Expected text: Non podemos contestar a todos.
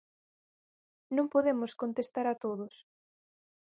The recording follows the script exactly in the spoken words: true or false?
true